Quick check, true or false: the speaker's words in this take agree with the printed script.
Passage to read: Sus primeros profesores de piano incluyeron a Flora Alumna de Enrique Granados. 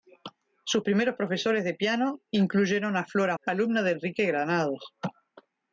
true